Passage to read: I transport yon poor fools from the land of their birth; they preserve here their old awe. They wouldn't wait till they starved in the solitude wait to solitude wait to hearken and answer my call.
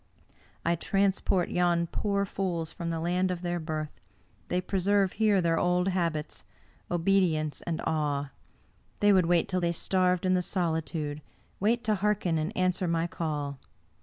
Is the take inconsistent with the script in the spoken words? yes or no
yes